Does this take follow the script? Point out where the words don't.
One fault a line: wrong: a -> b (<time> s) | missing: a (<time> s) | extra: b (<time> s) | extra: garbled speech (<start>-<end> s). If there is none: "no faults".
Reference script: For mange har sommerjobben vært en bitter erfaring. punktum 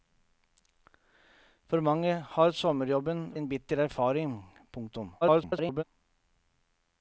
missing: vært (3.2 s)
extra: garbled speech (5.2-5.8 s)